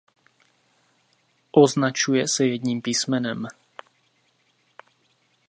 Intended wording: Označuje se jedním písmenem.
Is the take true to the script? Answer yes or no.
yes